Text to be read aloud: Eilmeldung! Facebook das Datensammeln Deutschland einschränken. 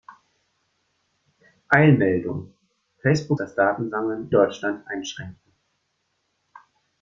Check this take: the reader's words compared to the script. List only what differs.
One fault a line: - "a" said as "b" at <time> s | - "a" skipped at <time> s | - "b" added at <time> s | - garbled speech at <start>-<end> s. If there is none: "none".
none